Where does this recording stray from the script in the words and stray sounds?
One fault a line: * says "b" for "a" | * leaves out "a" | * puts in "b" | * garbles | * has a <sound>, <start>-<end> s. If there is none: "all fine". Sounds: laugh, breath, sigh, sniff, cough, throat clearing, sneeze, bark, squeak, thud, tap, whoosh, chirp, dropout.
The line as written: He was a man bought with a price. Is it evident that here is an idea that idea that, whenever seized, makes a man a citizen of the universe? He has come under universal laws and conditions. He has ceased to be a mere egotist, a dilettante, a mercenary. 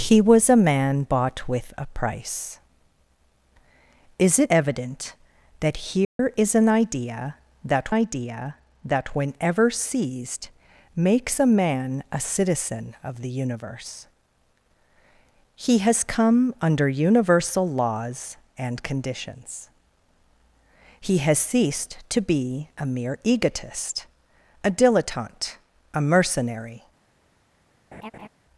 * has a dropout, 6.0-6.2 s
* has a laugh, 27.9-28.3 s